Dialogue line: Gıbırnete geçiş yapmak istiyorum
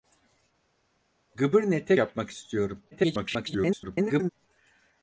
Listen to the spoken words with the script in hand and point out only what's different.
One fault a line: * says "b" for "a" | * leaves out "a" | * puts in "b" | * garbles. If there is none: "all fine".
* leaves out "geçiş"
* garbles